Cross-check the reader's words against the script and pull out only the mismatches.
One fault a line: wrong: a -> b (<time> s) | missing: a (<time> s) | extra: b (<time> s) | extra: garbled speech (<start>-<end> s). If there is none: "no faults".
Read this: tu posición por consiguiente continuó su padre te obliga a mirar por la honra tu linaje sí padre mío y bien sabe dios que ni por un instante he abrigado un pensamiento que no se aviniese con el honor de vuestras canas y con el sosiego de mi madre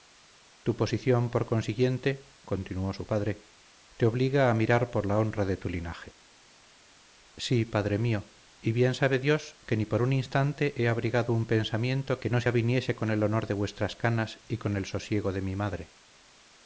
extra: de (5.5 s)